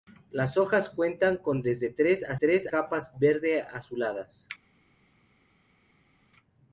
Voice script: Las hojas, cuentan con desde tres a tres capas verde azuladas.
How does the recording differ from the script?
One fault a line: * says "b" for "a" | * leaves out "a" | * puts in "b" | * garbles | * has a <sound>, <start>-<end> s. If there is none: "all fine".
all fine